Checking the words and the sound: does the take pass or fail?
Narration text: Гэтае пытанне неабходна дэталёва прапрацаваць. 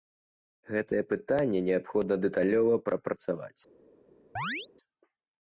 fail